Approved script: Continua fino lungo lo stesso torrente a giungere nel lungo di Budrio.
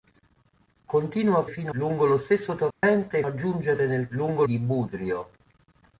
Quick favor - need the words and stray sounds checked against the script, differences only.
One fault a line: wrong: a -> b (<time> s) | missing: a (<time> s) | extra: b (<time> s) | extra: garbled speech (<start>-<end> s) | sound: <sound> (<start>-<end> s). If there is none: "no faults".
sound: dropout (2.7-2.8 s)